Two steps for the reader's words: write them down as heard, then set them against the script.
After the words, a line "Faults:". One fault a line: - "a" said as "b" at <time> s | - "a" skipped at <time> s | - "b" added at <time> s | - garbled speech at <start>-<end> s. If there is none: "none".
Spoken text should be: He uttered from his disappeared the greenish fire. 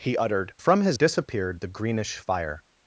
He uttered from his disappeared the greenish fire.
Faults:
none